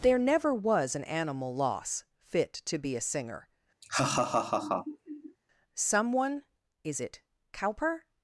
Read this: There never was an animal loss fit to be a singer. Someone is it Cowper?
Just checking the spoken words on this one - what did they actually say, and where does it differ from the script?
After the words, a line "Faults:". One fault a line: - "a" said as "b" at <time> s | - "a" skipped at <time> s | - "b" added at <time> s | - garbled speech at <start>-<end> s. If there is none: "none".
There never was an animal loss fit to be a singer. Someone is it Cowper?
Faults:
none